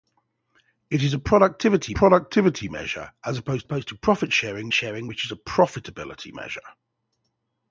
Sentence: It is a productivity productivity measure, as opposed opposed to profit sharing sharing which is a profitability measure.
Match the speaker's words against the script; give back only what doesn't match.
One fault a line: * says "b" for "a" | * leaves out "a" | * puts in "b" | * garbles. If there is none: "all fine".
all fine